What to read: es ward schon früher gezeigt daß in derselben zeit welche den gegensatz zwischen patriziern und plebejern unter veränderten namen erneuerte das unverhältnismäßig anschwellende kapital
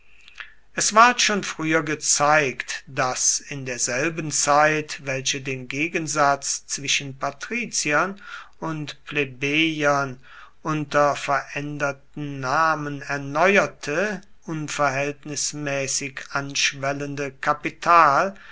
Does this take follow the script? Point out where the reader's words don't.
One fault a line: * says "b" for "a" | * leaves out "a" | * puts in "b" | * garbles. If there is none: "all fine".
* leaves out "das"